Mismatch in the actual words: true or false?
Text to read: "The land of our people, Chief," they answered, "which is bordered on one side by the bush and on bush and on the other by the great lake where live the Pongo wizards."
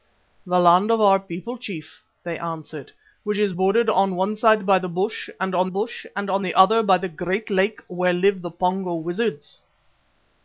false